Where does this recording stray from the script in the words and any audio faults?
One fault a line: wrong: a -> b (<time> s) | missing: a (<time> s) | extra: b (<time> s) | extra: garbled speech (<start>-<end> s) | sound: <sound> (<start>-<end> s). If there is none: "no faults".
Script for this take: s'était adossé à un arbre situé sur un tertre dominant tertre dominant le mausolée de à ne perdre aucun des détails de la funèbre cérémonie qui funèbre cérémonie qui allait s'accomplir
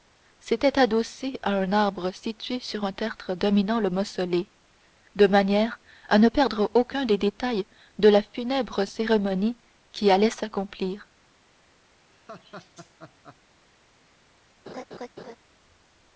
missing: tertre dominant (3.8 s)
extra: manière (5.3 s)
missing: funèbre cérémonie qui (10.1 s)
sound: laugh (12.1-13.4 s)
sound: laugh (14.7-15.4 s)